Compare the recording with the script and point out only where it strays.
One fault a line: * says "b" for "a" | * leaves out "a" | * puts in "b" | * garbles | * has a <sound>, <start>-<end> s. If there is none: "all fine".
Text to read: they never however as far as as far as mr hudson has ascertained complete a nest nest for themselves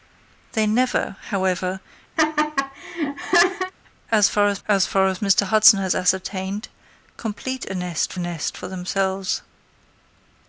* has a laugh, 2.2-3.7 s